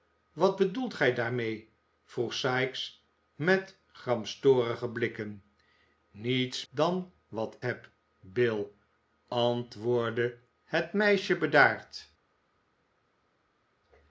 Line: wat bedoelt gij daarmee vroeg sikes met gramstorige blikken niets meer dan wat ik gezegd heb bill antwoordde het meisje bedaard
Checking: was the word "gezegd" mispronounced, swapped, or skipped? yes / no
yes